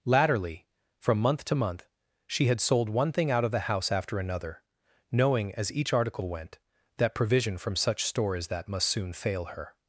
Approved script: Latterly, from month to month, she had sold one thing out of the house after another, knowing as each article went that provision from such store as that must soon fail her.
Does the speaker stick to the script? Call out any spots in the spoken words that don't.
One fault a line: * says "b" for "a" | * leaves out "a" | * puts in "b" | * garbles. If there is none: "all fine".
all fine